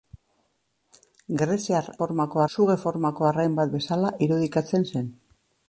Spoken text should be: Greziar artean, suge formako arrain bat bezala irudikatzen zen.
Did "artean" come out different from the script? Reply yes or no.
yes